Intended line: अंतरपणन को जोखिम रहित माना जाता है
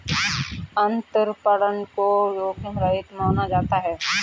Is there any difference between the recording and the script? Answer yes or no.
no